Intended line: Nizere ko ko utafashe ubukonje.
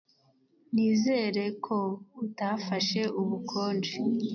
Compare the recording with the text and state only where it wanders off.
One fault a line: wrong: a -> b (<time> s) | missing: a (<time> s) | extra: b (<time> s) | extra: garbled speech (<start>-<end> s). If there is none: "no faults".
missing: ko (1.8 s)